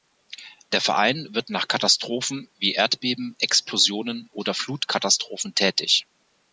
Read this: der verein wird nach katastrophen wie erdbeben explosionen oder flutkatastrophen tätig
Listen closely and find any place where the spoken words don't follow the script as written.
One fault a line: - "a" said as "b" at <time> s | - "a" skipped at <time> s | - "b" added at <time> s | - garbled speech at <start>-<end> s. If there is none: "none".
none